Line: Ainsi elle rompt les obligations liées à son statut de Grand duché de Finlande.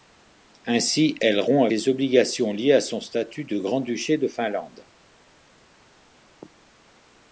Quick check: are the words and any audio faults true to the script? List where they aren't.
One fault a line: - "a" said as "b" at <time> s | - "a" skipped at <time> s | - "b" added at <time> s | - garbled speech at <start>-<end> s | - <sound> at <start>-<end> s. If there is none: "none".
none